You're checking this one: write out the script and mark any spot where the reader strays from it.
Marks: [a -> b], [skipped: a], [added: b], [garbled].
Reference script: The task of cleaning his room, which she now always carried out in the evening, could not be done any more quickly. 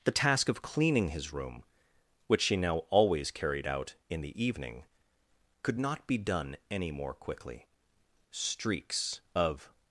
The task of cleaning his room, which she now always carried out in the evening, could not be done any more quickly. [added: Streaks of]